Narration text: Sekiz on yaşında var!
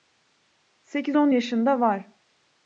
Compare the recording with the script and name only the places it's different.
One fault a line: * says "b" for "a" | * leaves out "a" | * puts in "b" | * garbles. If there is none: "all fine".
all fine